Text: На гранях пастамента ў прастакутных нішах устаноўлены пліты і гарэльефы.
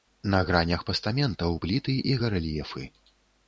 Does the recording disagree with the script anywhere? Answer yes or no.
yes